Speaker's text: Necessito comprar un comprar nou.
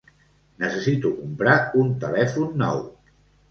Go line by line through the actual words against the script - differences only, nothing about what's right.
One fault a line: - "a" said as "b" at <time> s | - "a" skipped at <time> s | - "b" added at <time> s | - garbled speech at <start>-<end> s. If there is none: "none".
- "comprar" said as "telèfon" at 2.1 s